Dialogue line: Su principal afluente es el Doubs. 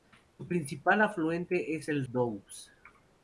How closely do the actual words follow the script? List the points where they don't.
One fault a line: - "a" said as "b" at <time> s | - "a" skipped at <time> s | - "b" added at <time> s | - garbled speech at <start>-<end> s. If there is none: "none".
none